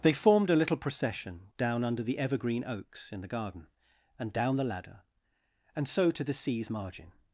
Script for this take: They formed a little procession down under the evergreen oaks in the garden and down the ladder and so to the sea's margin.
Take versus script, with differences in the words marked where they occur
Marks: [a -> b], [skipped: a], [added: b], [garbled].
They formed a little procession down under the evergreen oaks in the garden and down the ladder and so to the sea's margin.